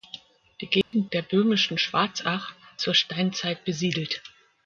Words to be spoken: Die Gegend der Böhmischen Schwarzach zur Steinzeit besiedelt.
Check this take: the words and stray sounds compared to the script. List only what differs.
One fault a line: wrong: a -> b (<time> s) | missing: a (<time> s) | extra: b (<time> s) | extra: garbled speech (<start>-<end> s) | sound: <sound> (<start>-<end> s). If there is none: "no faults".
sound: dropout (0.8-0.9 s)